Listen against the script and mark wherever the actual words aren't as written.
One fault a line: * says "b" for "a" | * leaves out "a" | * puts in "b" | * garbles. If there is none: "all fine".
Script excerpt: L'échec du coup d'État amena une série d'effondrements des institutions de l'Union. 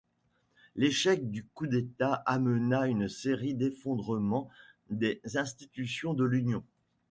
all fine